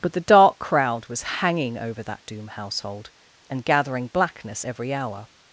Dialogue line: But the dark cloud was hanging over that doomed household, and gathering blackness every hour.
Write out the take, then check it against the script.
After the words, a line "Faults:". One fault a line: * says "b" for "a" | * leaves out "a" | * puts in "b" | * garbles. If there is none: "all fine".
But the dark crowd was hanging over that doom household, and gathering blackness every hour.
Faults:
* says "crowd" for "cloud"
* says "doom" for "doomed"